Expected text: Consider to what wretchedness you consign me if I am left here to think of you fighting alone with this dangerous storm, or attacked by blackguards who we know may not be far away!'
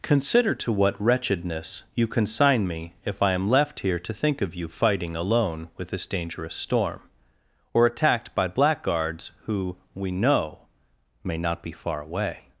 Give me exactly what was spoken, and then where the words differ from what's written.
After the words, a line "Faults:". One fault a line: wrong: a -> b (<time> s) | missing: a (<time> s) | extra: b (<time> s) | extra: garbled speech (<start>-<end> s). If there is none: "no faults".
Consider to what wretchedness you consign me if I am left here to think of you fighting alone with this dangerous storm, or attacked by blackguards who we know may not be far away!'
Faults:
no faults